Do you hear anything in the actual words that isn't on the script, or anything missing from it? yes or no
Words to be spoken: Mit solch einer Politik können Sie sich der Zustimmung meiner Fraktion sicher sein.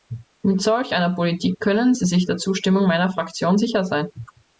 no